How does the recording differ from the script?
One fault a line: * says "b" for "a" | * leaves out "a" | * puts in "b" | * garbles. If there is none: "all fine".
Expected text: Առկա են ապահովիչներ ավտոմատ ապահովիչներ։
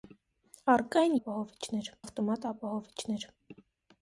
all fine